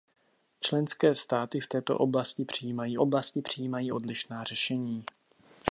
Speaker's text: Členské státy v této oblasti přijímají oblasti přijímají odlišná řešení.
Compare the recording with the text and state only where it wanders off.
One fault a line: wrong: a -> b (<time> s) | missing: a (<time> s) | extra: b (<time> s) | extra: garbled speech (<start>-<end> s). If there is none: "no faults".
no faults